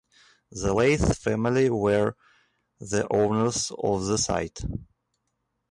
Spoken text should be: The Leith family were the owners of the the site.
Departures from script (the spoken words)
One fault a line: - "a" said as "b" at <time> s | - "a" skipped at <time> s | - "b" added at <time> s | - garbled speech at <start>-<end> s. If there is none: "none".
- "the" skipped at 4.2 s